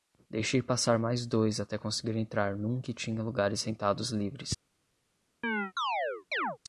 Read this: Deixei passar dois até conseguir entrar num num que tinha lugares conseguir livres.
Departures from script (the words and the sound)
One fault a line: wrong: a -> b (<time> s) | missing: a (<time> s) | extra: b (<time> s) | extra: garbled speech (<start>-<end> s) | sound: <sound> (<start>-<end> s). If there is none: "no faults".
extra: mais (1.0 s)
missing: num (2.8 s)
wrong: conseguir -> sentados (3.6 s)
sound: chirp (5.4-6.6 s)